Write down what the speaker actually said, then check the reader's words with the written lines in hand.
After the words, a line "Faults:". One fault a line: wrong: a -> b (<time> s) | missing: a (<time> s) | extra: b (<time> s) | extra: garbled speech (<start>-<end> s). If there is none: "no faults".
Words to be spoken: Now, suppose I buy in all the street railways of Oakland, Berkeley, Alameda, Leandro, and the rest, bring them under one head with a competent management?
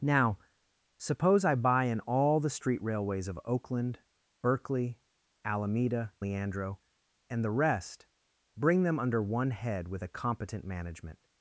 Now, suppose I buy in all the street railways of Oakland, Berkeley, Alameda, Leandro, and the rest, bring them under one head with a competent management?
Faults:
no faults